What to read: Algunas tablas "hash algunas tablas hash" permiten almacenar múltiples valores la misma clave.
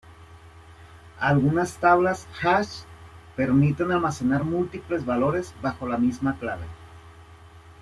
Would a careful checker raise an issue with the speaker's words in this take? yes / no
yes